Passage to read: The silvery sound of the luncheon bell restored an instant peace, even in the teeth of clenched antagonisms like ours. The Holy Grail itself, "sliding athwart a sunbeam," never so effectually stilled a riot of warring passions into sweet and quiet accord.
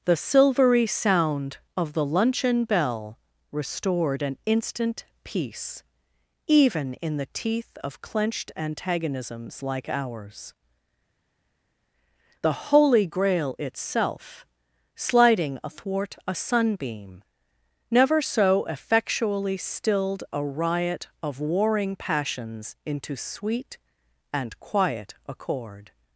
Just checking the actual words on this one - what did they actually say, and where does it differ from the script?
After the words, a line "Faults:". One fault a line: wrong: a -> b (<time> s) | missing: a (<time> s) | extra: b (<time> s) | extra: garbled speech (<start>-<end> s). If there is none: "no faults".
The silvery sound of the luncheon bell restored an instant peace, even in the teeth of clenched antagonisms like ours. The Holy Grail itself, "sliding athwart a sunbeam," never so effectually stilled a riot of warring passions into sweet and quiet accord.
Faults:
no faults